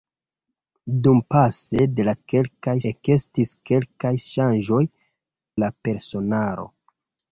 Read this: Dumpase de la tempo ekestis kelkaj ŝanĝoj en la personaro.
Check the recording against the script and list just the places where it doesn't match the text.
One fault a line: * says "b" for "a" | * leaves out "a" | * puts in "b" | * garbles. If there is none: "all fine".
* says "kelkaj" for "tempo"
* leaves out "en"